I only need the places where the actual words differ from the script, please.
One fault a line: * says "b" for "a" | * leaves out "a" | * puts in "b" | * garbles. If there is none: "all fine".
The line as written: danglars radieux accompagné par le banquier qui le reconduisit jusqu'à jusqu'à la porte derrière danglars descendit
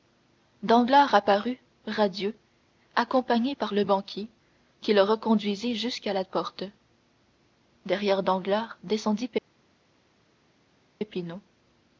* puts in "apparut"
* leaves out "jusqu'à"